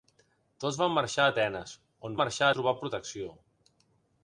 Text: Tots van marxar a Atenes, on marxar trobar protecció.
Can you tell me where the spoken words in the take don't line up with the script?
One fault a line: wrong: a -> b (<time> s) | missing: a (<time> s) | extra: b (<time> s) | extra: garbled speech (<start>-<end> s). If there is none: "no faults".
no faults